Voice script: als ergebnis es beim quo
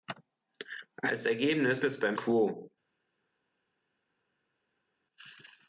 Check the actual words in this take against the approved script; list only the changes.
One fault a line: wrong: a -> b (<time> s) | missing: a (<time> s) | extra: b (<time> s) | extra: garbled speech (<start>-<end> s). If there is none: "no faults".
no faults